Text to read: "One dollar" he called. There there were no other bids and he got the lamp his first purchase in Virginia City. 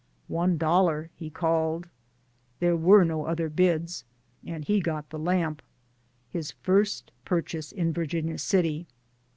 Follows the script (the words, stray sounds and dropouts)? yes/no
no